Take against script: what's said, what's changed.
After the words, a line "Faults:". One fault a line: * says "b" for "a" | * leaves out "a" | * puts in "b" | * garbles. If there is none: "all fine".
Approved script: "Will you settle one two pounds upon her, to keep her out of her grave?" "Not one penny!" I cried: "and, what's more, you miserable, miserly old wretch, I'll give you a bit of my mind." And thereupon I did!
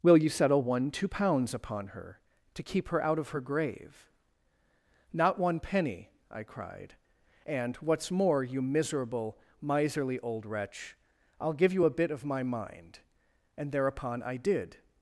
"Will you settle one two pounds upon her, to keep her out of her grave?" "Not one penny!" I cried: "and, what's more, you miserable, miserly old wretch, I'll give you a bit of my mind." And thereupon I did!
Faults:
all fine